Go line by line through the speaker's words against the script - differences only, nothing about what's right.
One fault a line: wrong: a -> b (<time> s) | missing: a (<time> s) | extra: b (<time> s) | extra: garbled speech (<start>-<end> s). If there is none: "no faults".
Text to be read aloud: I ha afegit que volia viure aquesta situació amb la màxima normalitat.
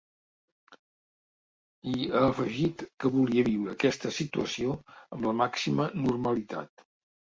no faults